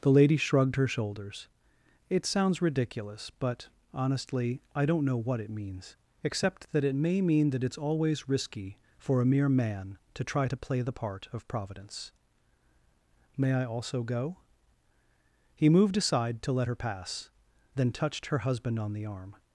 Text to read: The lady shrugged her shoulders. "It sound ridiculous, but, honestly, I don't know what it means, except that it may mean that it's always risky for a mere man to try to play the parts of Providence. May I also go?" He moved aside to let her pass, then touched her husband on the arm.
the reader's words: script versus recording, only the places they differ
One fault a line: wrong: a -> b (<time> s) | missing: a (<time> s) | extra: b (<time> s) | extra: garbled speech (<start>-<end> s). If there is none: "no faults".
wrong: sound -> sounds (2.2 s)
wrong: parts -> part (10.9 s)